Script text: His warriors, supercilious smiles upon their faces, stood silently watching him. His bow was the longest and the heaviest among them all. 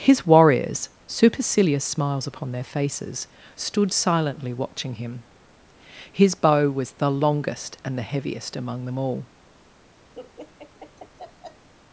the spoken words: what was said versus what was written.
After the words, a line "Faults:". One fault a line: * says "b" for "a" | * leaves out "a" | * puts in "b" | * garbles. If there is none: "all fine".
His warriors, supercilious smiles upon their faces, stood silently watching him. His bow was the longest and the heaviest among them all.
Faults:
all fine